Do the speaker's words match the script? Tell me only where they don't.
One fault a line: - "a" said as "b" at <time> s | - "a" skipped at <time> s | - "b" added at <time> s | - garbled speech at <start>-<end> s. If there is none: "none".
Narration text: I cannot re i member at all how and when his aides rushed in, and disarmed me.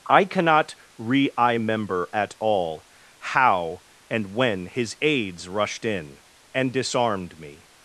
none